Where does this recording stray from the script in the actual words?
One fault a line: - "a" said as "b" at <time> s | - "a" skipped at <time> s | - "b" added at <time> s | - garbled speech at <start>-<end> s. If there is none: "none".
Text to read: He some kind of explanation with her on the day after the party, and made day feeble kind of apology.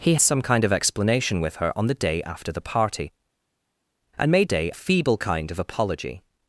none